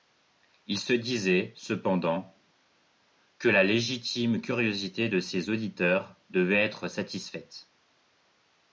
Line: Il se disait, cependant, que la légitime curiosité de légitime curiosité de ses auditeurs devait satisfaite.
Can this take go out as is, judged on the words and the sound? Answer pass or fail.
fail